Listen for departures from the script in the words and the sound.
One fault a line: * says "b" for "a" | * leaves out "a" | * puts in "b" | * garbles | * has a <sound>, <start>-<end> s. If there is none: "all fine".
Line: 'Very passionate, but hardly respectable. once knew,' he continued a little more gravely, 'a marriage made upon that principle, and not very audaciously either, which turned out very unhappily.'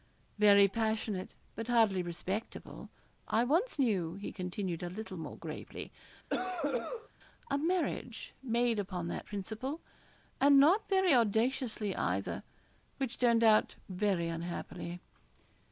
* puts in "I"
* has a cough, 6.3-7.1 s